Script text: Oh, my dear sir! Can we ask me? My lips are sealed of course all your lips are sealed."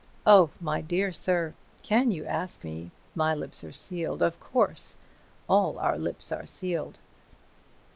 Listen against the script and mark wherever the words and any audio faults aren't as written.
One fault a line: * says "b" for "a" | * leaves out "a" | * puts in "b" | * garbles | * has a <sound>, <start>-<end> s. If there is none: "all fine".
* says "you" for "we"
* says "our" for "your"